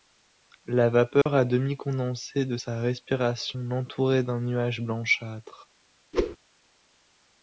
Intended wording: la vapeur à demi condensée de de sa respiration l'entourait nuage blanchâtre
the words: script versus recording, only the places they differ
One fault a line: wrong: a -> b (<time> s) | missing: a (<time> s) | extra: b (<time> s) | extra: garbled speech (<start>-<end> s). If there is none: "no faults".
missing: de (2.6 s)
extra: d'un (4.2 s)